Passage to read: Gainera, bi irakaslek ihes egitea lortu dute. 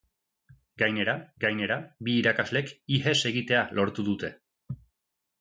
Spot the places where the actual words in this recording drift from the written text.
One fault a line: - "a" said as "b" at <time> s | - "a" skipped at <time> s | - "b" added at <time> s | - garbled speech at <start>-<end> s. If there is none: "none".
- "gainera" added at 1.4 s